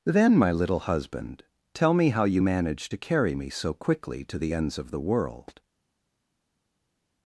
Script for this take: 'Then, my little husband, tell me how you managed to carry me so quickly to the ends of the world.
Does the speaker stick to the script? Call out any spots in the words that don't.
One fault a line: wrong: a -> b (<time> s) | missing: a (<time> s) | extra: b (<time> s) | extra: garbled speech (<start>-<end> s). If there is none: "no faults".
no faults